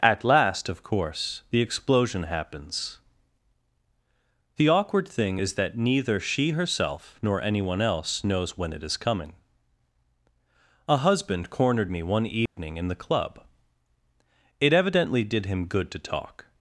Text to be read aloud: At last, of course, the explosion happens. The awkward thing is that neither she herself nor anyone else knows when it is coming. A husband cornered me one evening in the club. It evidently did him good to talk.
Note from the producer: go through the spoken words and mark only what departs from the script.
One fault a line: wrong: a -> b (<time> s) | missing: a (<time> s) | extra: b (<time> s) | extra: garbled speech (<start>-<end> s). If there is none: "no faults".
no faults